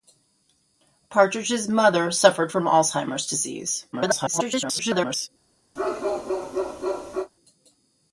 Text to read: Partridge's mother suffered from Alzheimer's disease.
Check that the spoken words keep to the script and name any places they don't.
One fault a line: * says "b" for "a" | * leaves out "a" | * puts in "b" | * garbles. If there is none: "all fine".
* garbles